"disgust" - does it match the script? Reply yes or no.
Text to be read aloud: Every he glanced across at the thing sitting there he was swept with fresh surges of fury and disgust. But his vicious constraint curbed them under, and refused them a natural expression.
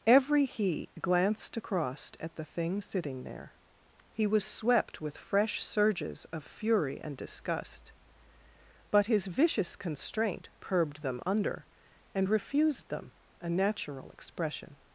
yes